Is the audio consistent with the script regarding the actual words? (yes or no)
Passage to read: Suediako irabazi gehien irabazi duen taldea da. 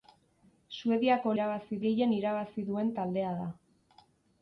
yes